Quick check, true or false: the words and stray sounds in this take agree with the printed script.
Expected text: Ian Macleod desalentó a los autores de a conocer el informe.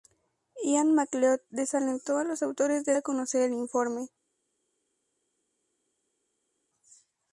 true